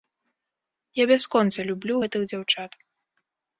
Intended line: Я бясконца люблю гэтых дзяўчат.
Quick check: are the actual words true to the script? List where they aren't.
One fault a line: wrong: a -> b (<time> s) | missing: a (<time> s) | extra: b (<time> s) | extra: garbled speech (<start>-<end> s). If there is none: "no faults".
no faults